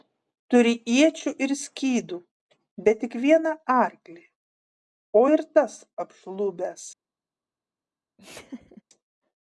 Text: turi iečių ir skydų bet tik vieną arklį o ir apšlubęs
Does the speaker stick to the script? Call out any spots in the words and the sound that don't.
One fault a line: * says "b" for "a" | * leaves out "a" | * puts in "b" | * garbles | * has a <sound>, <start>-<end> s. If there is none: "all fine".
* puts in "tas"
* has a laugh, 8.2-8.8 s